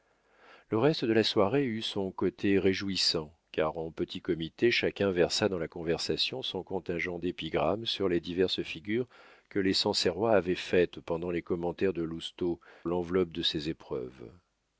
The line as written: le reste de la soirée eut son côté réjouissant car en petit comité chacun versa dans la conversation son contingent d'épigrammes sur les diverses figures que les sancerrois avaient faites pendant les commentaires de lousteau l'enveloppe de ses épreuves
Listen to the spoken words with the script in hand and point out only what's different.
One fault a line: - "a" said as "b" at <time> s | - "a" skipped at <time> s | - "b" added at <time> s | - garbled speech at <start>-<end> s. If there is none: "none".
none